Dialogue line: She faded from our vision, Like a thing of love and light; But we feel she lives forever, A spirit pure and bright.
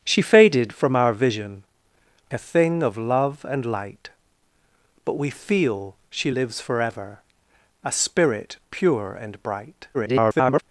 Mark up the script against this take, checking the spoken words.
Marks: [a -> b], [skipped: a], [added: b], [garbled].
She faded from our vision, [skipped: Like] a thing of love and light; But we feel she lives forever, A spirit pure and bright. [garbled]